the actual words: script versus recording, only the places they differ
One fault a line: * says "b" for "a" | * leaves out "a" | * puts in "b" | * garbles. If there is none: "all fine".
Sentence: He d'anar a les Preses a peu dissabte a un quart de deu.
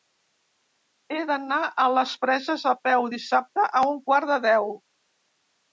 all fine